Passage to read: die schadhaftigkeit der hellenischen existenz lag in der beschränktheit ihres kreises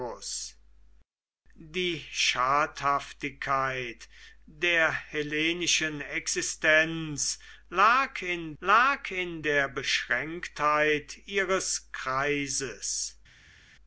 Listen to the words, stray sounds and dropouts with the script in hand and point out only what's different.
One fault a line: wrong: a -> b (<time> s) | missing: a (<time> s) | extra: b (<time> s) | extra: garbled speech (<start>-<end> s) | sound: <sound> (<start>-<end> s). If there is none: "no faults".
extra: lag in (8.6 s)